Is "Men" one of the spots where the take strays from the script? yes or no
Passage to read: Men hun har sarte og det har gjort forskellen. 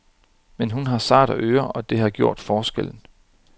no